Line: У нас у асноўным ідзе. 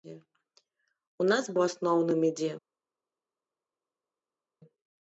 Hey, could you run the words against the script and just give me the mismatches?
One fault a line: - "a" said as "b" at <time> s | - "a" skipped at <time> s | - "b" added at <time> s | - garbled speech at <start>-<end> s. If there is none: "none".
none